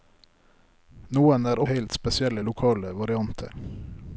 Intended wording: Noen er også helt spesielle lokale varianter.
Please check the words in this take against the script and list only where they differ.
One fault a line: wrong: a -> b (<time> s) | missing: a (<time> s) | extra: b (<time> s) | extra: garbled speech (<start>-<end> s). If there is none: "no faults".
missing: også (1.6 s)